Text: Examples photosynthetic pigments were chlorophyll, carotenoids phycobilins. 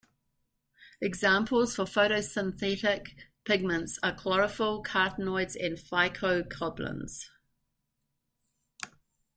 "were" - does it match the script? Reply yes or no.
no